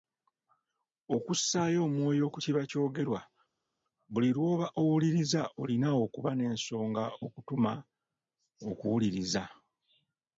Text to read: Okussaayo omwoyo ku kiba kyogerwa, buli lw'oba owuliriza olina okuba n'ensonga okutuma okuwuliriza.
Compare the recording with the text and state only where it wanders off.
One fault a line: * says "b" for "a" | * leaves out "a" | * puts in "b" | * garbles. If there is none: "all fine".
all fine